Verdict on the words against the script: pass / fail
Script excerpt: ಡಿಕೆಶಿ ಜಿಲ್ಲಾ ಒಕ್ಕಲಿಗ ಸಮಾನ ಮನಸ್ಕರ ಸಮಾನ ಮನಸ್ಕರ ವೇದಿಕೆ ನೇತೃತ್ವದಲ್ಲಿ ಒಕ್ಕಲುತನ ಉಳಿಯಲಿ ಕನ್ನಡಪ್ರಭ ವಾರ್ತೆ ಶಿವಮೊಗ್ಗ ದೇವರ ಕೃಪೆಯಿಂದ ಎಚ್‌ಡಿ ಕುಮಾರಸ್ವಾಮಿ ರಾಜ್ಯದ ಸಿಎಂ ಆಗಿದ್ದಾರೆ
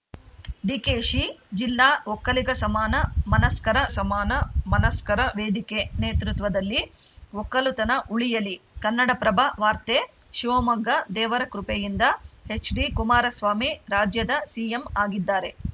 pass